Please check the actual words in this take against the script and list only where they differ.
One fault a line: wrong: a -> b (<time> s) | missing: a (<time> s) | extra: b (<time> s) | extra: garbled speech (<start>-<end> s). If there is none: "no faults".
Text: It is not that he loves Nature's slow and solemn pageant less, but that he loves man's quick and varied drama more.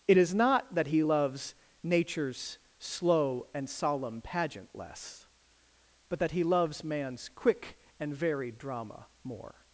no faults